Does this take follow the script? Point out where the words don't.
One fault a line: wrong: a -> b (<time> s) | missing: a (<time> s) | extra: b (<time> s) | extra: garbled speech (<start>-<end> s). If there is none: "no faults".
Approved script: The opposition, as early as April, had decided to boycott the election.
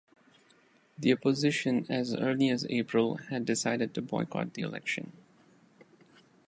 no faults